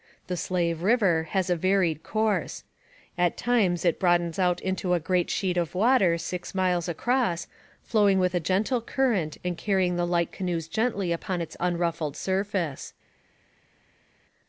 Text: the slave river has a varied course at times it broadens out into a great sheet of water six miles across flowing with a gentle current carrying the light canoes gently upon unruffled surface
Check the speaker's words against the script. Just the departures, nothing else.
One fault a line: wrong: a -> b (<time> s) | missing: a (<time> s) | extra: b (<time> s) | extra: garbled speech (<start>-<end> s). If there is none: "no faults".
extra: and (9.4 s)
extra: its (11.4 s)